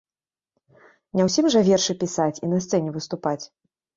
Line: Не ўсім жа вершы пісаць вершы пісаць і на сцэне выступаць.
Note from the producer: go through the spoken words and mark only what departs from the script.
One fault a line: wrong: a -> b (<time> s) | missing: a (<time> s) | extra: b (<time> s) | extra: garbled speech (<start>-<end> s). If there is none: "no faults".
missing: вершы пісаць (2.4 s)